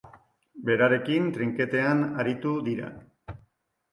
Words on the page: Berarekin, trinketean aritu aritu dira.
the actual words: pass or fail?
fail